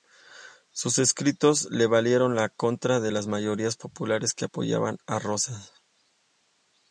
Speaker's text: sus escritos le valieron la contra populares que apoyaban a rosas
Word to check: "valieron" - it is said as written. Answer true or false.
true